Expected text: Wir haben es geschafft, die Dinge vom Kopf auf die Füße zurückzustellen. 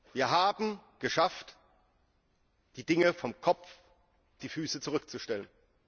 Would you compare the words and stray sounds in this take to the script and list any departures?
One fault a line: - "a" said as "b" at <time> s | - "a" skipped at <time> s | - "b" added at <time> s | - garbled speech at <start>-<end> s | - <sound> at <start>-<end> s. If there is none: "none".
- "auf" skipped at 3.7 s